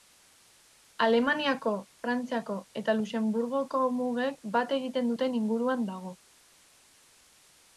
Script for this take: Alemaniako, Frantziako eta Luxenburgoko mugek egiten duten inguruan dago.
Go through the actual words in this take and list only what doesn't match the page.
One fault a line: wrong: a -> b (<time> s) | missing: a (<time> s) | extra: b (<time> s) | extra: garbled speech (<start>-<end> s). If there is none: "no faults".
extra: bat (4.6 s)